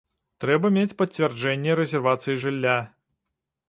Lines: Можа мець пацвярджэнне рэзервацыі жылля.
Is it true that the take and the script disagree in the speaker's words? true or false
true